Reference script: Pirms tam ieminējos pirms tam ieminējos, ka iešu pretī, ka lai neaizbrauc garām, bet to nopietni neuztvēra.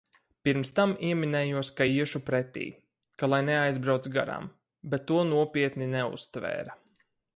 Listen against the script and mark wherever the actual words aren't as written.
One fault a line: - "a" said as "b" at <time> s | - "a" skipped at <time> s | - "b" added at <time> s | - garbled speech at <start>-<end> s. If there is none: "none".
- "pirms tam ieminējos" skipped at 1.7 s